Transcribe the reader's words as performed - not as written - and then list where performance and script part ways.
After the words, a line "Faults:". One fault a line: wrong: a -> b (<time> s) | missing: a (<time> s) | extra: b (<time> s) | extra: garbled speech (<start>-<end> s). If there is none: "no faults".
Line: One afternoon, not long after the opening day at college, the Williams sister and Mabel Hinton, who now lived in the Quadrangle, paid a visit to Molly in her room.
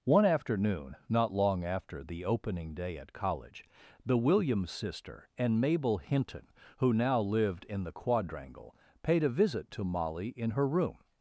One afternoon, not long after the opening day at college, the Williams sister and Mabel Hinton, who now lived in the Quadrangle, paid a visit to Molly in her room.
Faults:
no faults